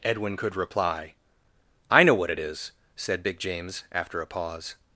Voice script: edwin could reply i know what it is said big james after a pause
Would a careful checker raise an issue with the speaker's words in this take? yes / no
no